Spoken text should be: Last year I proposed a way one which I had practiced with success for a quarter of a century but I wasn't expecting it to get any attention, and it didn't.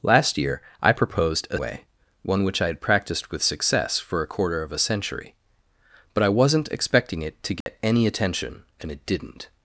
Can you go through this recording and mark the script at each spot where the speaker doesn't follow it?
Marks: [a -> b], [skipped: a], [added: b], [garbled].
Last year I proposed a way one which I had practiced with success for a quarter of a century but I wasn't expecting it to get any attention, and it didn't.